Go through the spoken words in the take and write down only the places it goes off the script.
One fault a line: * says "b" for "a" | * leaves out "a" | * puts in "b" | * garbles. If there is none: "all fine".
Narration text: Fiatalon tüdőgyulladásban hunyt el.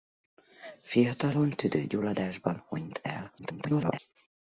* garbles